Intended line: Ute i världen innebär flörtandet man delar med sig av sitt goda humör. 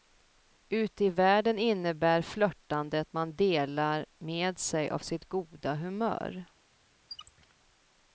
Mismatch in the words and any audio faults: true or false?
true